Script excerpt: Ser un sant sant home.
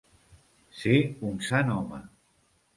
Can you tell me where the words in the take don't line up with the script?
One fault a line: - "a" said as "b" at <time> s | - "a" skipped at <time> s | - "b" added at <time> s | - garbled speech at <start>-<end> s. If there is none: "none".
- "sant" skipped at 1.8 s